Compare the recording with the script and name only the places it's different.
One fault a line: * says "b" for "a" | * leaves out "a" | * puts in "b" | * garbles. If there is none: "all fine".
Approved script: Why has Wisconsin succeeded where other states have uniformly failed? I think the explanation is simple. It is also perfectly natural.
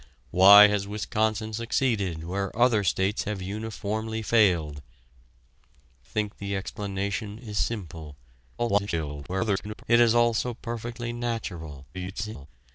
* leaves out "I"
* garbles
* garbles